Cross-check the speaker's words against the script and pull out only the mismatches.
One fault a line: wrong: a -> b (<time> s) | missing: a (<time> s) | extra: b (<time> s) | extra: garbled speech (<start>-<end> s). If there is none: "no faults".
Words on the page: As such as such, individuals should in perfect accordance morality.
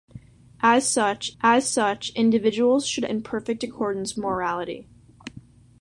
no faults